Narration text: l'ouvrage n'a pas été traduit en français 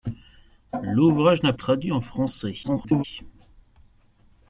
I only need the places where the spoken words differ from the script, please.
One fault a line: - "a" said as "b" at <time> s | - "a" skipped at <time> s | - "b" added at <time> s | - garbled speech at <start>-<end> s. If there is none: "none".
- "pas été" skipped at 1.5 s
- garbled speech at 2.6-3.0 s